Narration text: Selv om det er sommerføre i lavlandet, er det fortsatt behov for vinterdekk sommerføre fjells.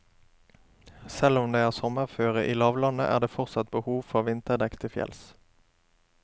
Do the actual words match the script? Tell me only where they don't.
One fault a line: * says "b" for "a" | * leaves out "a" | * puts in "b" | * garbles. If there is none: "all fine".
* says "til" for "sommerføre"